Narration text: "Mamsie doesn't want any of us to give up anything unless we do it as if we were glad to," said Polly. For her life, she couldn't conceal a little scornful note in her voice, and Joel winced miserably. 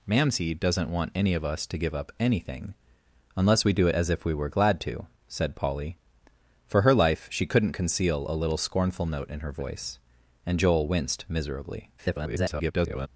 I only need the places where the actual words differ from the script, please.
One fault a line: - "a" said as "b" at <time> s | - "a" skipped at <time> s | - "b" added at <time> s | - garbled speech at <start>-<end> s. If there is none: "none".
- garbled speech at 12.0-13.1 s